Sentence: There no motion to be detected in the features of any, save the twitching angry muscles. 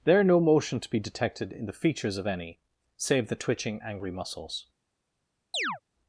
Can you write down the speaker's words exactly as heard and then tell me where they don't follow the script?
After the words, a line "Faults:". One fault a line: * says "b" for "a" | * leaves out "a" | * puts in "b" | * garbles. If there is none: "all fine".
There no motion to be detected in the features of any, save the twitching angry muscles.
Faults:
all fine